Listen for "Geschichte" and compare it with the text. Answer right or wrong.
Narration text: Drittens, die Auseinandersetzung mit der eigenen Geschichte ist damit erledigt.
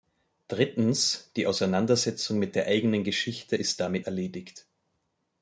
right